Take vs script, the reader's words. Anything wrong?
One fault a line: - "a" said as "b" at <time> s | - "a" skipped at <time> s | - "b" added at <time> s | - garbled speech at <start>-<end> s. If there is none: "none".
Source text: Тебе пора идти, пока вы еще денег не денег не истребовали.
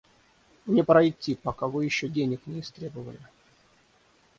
- "Тебе" said as "Мне" at 0.7 s
- "денег не" skipped at 2.6 s